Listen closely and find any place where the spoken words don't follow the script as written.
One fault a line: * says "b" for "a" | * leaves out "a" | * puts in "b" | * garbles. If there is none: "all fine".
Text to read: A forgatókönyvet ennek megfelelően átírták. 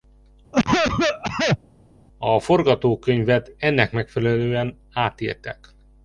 all fine